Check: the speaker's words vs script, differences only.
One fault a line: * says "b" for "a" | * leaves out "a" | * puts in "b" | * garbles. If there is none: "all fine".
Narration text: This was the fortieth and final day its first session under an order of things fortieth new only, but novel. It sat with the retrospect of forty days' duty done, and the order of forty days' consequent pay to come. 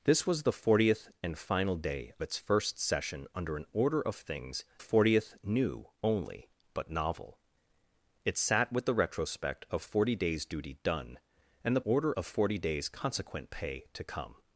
all fine